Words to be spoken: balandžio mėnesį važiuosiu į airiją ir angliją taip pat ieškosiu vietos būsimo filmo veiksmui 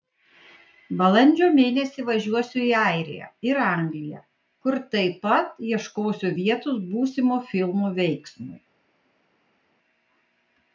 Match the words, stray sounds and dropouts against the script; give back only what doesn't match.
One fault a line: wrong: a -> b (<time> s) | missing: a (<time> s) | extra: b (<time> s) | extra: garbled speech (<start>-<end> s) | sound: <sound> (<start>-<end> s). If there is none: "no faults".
extra: kur (4.7 s)